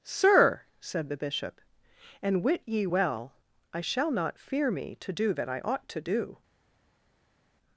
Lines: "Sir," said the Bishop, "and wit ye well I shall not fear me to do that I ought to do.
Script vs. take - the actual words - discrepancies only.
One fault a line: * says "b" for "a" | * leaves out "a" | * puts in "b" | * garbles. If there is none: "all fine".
all fine